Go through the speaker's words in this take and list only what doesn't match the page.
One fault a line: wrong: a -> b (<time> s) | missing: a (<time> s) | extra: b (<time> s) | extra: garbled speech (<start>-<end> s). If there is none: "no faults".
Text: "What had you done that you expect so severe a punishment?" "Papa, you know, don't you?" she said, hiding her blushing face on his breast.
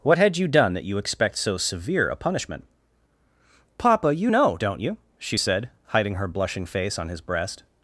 no faults